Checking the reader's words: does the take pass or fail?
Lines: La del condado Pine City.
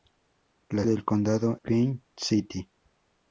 pass